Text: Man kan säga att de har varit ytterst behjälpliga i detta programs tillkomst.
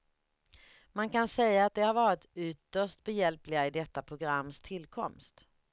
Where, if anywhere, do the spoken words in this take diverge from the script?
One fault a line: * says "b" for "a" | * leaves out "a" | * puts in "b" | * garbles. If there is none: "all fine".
all fine